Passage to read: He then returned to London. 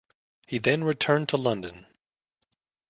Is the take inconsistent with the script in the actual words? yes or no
no